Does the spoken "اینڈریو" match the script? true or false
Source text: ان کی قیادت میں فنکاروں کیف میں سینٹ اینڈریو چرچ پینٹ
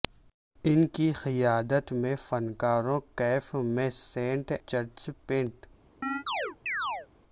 false